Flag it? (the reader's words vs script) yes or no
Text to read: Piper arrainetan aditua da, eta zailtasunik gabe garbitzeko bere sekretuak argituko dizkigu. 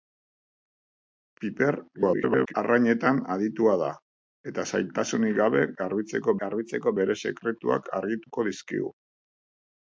yes